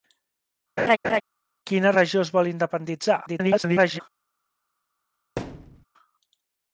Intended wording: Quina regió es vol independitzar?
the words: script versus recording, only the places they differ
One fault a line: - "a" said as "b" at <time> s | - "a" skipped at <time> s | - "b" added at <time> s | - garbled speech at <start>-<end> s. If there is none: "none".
- garbled speech at 3.3-4.0 s